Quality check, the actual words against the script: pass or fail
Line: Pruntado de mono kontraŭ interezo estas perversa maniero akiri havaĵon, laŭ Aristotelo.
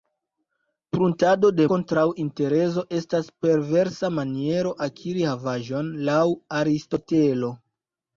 fail